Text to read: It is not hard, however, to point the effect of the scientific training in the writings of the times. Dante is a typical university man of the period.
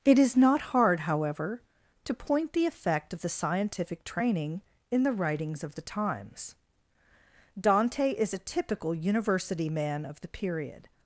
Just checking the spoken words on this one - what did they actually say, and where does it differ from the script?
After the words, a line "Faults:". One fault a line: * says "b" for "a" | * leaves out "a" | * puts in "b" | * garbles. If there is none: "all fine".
It is not hard, however, to point the effect of the scientific training in the writings of the times. Dante is a typical university man of the period.
Faults:
all fine